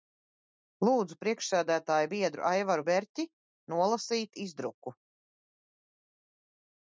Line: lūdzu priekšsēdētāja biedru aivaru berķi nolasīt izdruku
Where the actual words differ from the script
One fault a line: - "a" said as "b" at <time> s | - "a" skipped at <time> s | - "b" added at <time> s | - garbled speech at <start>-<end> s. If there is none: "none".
none